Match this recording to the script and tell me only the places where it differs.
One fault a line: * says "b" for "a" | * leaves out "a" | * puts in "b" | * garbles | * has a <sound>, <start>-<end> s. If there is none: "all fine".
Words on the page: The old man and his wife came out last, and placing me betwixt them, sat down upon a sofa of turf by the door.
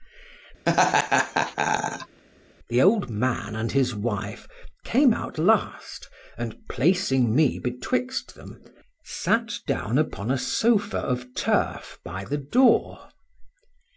* has a laugh, 0.7-2.2 s